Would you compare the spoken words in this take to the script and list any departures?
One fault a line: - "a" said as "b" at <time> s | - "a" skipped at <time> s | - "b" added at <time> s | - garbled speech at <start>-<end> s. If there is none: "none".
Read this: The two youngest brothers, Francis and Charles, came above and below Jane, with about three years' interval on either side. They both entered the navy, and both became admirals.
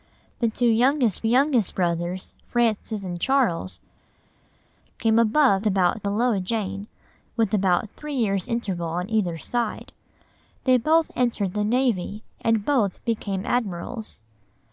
- "youngest" added at 1.2 s
- "and" said as "about" at 5.6 s